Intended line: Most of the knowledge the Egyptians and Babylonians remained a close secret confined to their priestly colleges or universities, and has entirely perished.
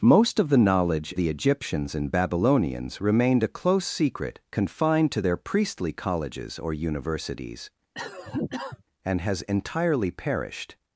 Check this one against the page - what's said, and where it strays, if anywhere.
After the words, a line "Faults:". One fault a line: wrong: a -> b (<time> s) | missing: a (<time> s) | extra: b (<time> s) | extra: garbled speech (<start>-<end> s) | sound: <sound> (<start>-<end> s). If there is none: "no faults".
Most of the knowledge the Egyptians and Babylonians remained a close secret confined to their priestly colleges or universities, and has entirely perished.
Faults:
sound: cough (7.9-8.8 s)